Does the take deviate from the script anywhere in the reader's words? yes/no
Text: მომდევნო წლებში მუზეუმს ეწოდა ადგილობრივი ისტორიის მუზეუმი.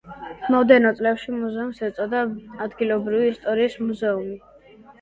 no